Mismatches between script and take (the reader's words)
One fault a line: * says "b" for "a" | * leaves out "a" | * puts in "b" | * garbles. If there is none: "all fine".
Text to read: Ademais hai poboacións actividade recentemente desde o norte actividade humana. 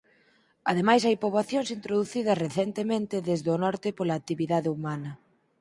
* says "introducidas" for "actividade"
* puts in "pola"